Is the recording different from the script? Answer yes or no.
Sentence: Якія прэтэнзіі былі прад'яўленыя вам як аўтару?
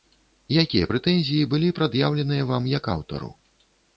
no